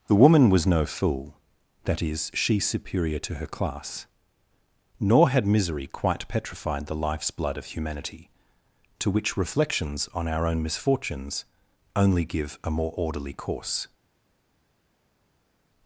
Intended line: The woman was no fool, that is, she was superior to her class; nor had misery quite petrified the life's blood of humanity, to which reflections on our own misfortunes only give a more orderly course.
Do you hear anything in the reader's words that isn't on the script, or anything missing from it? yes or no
yes